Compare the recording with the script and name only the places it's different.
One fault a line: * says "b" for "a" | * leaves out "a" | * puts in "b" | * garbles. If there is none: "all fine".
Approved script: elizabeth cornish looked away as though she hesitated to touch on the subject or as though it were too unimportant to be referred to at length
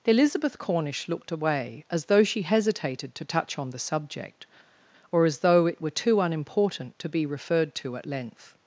all fine